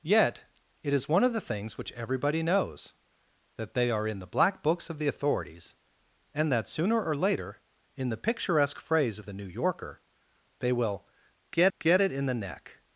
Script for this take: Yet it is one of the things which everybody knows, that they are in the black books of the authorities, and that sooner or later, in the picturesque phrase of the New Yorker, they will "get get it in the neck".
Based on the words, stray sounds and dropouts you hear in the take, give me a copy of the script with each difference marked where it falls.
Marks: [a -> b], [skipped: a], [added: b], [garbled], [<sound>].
Yet it is one of the things which everybody knows, that they are in the black books of the authorities, and that sooner or later, in the picturesque phrase of the New Yorker, they will "get get it in the neck".